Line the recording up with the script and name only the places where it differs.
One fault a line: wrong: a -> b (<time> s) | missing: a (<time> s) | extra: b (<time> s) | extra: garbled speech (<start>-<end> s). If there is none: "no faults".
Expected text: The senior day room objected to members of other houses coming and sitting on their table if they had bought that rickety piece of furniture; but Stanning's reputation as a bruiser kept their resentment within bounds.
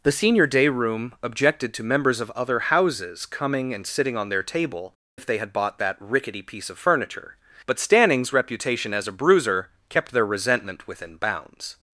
no faults